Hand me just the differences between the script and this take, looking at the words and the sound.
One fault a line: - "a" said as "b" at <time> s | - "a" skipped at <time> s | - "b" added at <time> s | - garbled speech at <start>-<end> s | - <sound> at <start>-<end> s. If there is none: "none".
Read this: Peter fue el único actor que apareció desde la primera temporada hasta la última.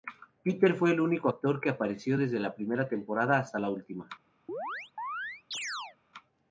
- chirp at 4.5-6.0 s